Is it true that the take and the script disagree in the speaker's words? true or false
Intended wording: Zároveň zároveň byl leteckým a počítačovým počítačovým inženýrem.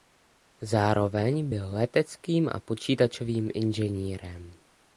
true